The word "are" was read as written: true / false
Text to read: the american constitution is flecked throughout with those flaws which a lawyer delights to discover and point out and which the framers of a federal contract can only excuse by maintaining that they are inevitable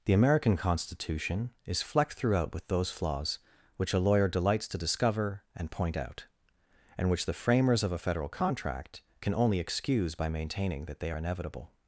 false